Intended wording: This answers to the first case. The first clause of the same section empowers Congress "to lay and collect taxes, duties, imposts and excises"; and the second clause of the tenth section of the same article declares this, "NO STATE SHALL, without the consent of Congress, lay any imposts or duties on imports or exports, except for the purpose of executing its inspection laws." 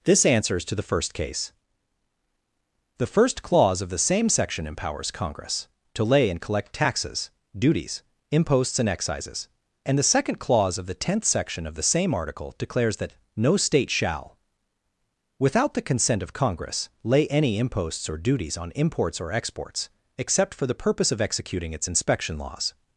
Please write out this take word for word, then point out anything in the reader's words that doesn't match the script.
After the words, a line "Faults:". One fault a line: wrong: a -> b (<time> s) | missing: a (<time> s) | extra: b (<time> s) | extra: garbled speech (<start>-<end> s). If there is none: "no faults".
This answers to the first case. The first clause of the same section empowers Congress "to lay and collect taxes, duties, imposts and excises"; and the second clause of the tenth section of the same article declares that, "NO STATE SHALL, without the consent of Congress, lay any imposts or duties on imports or exports, except for the purpose of executing its inspection laws."
Faults:
wrong: this -> that (13.0 s)